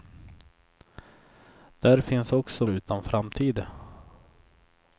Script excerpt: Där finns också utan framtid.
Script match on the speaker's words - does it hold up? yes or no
yes